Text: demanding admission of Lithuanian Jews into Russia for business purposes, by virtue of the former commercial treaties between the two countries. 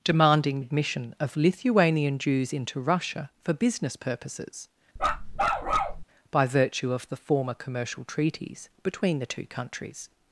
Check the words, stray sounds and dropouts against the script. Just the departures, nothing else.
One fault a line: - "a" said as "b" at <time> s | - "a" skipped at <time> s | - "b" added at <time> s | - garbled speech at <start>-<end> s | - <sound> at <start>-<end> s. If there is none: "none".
- bark at 5.0-6.0 s